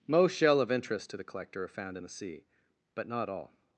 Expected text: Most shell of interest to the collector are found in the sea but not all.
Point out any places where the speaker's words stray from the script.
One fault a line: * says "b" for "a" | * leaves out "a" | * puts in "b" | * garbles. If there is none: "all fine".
all fine